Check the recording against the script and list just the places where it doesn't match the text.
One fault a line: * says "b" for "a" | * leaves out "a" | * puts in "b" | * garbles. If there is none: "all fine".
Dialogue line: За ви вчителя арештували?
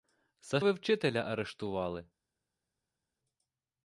all fine